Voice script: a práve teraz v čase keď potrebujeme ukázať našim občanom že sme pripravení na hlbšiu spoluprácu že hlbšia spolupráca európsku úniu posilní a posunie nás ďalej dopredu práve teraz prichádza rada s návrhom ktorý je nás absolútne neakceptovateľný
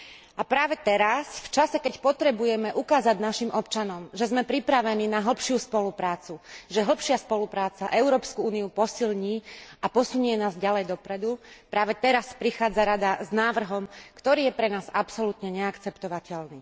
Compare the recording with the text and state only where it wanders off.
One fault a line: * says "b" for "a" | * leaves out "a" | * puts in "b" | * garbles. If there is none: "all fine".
* puts in "pre"